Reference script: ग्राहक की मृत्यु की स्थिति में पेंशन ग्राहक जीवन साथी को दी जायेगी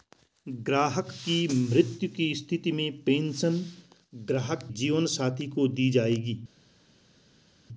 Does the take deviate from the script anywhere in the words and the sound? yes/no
no